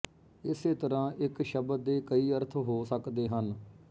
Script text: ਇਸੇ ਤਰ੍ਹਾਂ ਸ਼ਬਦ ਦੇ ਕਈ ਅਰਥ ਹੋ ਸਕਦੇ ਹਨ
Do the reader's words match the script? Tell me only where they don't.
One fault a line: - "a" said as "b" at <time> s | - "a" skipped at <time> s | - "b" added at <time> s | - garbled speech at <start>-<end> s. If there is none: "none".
- "ਇੱਕ" added at 1.2 s